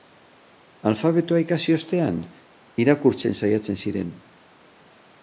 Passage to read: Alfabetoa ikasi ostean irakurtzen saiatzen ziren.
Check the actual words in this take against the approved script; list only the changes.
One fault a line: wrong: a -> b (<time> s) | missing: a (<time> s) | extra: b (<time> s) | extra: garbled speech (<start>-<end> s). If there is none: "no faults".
no faults